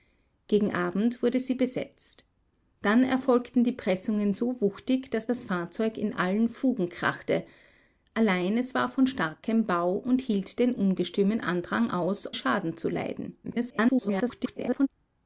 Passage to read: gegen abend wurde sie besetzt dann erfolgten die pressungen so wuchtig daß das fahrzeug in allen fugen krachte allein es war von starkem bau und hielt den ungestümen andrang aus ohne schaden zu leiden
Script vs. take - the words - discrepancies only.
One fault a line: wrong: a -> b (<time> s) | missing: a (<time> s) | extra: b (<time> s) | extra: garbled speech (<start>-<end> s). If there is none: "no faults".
missing: ohne (12.3 s)
extra: garbled speech (13.4-14.9 s)